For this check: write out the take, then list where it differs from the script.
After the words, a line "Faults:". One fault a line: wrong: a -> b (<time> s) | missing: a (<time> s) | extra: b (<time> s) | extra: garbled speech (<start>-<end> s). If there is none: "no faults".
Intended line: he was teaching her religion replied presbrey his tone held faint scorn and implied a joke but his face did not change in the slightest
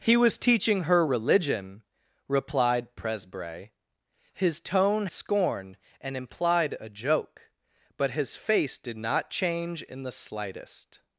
he was teaching her religion replied presbrey his tone scorn and implied a joke but his face did not change in the slightest
Faults:
missing: held faint (5.1 s)